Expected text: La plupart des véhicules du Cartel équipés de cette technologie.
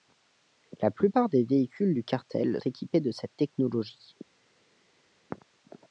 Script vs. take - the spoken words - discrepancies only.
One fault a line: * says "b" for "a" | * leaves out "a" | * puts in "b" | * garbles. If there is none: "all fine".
all fine